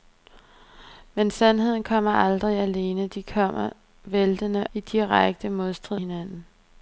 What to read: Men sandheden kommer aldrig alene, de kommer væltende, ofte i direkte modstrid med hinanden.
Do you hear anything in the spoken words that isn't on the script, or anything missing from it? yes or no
yes